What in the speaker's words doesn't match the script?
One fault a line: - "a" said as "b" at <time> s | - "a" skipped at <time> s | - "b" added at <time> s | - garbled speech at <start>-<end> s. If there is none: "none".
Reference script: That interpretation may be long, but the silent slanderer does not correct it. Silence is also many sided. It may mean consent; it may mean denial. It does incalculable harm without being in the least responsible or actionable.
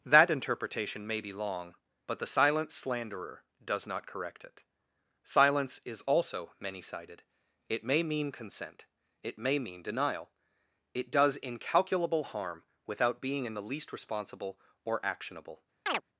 none